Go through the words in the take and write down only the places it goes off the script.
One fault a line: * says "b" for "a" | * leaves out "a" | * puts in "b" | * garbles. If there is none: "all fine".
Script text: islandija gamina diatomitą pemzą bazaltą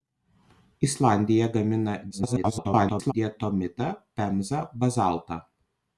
* garbles